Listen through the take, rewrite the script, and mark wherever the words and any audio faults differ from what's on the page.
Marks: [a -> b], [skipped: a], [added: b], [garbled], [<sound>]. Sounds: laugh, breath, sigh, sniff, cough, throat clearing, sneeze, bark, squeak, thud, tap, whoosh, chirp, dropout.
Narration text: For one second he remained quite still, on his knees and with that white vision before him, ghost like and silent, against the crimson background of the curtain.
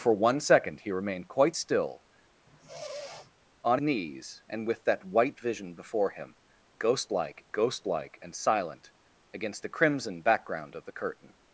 For one second he remained quite still, [sniff] on [skipped: his] knees and with that white vision before him, ghost like [added: ghost like] and silent, against the crimson background of the curtain.